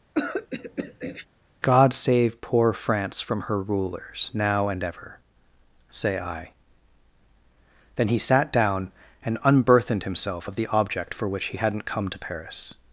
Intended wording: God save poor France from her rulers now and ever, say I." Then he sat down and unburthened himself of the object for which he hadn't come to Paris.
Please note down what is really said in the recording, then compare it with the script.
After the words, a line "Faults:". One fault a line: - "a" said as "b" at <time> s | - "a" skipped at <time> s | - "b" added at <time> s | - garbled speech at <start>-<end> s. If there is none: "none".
God save poor France from her rulers now and ever, say I." Then he sat down and unburthened himself of the object for which he hadn't come to Paris.
Faults:
none